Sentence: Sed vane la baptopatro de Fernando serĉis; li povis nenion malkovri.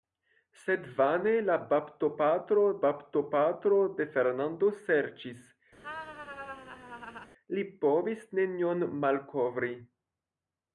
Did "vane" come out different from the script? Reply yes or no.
no